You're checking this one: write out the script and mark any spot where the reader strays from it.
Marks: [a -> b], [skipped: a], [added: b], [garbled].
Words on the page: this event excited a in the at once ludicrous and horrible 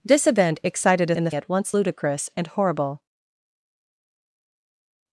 this event excited a in the at once ludicrous and horrible